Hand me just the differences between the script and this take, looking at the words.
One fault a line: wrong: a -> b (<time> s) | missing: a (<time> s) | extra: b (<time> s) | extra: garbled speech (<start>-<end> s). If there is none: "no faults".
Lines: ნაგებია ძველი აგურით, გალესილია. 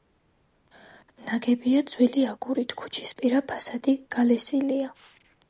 extra: ქუჩისპირა ფასადი (2.8 s)